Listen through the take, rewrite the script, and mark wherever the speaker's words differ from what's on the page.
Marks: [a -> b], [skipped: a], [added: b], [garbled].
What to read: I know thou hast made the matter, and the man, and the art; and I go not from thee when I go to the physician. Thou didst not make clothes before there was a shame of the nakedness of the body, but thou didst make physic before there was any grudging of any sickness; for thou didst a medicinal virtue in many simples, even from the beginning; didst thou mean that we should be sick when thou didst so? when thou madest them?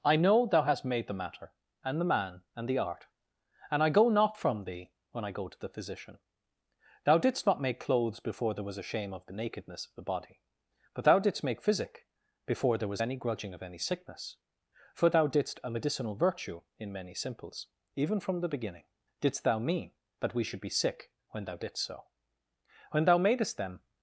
I know thou hast made the matter, and the man, and the art; and I go not from thee when I go to the physician. Thou didst not make clothes before there was a shame of the nakedness of the body, but thou didst make physic before there was any grudging of any sickness; for thou didst a medicinal virtue in many simples, even from the beginning; didst thou mean that we should be sick when thou didst so? when thou madest them?